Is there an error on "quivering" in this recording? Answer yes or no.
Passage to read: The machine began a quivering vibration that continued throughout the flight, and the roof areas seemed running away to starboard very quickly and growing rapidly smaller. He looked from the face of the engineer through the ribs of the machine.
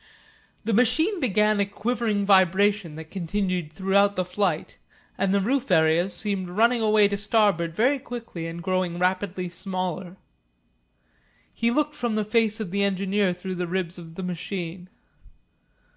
no